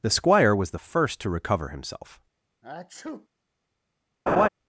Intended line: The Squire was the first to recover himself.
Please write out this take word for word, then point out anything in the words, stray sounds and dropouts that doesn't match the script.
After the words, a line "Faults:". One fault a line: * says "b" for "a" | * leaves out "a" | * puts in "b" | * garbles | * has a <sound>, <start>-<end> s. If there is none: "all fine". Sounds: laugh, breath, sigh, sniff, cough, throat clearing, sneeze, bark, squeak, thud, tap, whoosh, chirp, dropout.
The Squire was the first to recover himself.
Faults:
* has a sneeze, 2.6-3.3 s
* has a laugh, 4.3-4.5 s